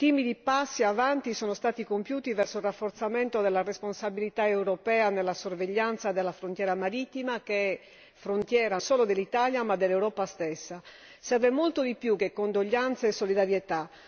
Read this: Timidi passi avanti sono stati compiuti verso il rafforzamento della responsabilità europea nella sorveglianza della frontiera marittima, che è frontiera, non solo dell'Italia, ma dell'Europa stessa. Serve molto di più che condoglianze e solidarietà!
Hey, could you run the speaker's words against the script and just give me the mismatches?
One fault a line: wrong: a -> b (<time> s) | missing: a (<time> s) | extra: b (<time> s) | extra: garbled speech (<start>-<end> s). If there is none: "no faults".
missing: non (8.8 s)